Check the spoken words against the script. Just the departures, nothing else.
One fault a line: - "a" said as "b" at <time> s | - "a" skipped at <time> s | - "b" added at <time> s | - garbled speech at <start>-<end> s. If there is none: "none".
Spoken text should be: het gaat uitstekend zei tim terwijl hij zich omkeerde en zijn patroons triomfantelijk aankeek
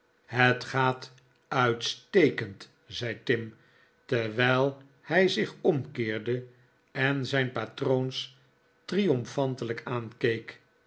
none